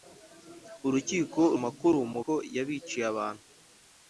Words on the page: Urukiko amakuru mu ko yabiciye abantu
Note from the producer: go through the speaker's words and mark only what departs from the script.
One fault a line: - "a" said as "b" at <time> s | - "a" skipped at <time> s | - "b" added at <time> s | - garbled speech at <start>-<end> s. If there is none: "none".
none